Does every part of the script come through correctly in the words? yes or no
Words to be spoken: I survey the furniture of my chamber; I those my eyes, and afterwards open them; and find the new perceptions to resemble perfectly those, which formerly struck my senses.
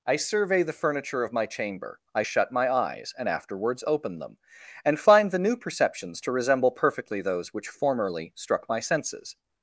no